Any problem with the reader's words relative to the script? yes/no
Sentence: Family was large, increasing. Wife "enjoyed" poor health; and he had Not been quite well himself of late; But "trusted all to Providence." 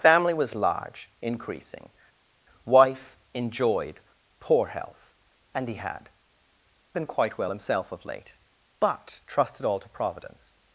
yes